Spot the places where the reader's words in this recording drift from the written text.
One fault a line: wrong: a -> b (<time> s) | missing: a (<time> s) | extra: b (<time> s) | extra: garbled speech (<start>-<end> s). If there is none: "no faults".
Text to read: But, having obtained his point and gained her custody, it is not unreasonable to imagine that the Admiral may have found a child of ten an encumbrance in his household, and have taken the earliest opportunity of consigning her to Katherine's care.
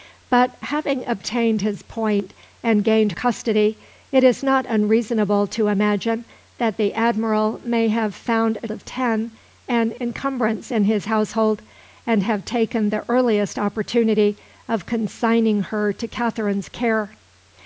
missing: her (3.1 s)
missing: child (8.7 s)